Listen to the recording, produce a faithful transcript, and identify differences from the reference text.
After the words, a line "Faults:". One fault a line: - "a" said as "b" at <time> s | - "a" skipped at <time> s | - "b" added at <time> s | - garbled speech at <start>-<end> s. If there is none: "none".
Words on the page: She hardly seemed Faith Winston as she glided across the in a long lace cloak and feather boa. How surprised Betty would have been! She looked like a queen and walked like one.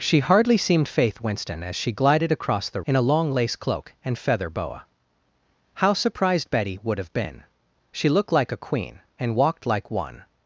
She hardly seemed Faith Winston as she glided across the in a long lace cloak and feather boa. How surprised Betty would have been! She looked like a queen and walked like one.
Faults:
none